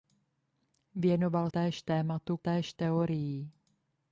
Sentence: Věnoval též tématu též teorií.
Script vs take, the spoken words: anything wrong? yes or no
no